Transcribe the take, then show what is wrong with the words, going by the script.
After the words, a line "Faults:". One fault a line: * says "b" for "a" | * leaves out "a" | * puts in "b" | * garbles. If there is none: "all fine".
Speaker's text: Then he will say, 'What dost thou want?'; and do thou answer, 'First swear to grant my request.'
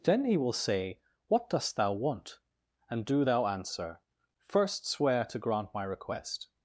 Then he will say, 'What dost thou want?'; and do thou answer, 'First swear to grant my request.'
Faults:
all fine